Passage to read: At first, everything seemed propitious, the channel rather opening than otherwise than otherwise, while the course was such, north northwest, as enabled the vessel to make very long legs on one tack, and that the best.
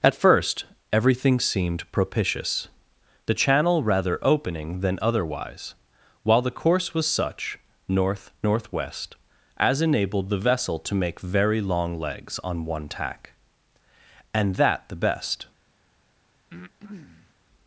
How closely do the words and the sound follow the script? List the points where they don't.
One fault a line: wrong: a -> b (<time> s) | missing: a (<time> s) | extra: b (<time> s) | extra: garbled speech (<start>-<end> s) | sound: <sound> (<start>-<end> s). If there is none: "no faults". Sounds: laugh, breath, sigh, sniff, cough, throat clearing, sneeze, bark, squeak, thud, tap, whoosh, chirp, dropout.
missing: than otherwise (5.8 s)
sound: breath (16.5-17.3 s)